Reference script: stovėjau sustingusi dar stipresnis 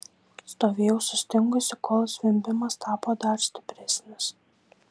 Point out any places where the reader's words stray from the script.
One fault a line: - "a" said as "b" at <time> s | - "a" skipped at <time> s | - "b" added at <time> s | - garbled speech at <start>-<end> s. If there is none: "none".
- "kol zvimbimas tapo" added at 1.9 s